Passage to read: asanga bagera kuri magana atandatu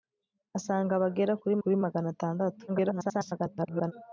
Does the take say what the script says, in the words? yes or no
no